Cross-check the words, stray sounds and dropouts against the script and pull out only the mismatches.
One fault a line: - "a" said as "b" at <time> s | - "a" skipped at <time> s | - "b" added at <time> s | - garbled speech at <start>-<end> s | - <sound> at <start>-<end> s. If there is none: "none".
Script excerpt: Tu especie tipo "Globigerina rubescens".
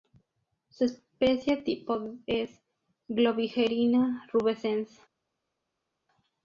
- "Tu" said as "Su" at 0.7 s
- "es" added at 2.2 s